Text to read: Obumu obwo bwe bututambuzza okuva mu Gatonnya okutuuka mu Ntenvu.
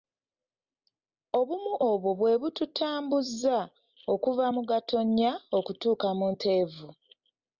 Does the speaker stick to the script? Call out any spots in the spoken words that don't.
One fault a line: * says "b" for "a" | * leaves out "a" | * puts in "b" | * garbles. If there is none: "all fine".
all fine